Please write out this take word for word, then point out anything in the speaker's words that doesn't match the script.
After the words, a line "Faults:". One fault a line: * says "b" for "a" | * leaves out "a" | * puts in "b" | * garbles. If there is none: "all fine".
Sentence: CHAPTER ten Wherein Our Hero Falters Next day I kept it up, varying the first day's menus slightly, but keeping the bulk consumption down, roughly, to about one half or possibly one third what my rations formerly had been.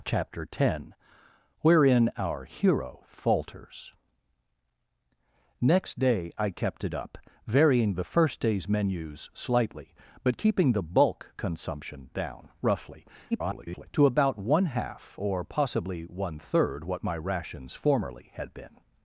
CHAPTER ten Wherein Our Hero Falters Next day I kept it up, varying the first day's menus slightly, but keeping the bulk consumption down, roughly, [garbled] to about one half or possibly one third what my rations formerly had been.
Faults:
* garbles